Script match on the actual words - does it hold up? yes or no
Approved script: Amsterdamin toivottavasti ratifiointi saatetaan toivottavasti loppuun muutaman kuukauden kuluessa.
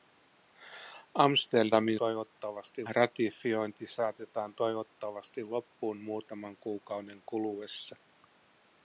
yes